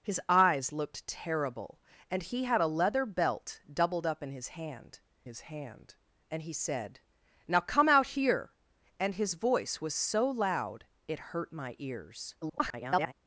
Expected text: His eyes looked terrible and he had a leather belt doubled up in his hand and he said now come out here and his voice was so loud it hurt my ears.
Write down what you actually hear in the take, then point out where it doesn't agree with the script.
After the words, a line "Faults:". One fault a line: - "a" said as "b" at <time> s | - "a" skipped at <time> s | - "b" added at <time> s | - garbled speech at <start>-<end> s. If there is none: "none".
His eyes looked terrible and he had a leather belt doubled up in his hand his hand and he said now come out here and his voice was so loud it hurt my ears. [garbled]
Faults:
- "his hand" added at 5.2 s
- garbled speech at 12.4-13.1 s